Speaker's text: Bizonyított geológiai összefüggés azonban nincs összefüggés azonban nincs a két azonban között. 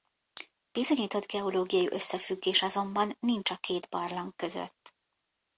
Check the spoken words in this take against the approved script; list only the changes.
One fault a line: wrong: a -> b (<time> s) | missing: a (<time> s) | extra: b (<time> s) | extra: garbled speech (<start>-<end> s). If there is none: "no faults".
missing: összefüggés azonban nincs (3.5 s)
wrong: azonban -> barlang (3.9 s)